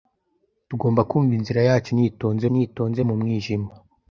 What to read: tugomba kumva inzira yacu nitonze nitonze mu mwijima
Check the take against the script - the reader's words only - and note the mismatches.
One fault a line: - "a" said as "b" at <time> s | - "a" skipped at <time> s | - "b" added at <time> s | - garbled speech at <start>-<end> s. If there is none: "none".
none